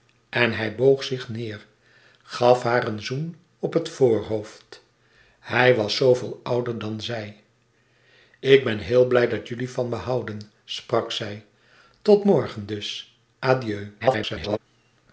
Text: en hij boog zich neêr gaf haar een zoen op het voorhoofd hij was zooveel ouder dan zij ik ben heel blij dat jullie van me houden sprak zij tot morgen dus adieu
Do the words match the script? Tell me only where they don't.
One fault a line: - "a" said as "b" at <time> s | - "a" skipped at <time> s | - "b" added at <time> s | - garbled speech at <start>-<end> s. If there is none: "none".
- garbled speech at 14.0-14.6 s